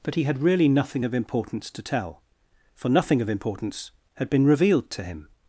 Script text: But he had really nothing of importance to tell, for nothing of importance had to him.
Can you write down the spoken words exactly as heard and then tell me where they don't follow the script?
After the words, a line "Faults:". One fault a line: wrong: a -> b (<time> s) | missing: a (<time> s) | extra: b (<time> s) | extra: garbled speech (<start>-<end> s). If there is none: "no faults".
But he had really nothing of importance to tell, for nothing of importance had been revealed to him.
Faults:
extra: been revealed (4.3 s)